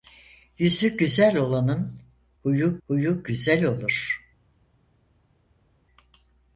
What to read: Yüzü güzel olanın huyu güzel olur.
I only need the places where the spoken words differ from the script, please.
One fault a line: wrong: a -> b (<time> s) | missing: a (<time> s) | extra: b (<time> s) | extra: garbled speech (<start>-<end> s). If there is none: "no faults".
extra: huyu (2.9 s)